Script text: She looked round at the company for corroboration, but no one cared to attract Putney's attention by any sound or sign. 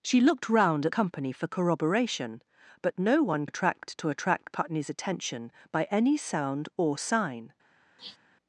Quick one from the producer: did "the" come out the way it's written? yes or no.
no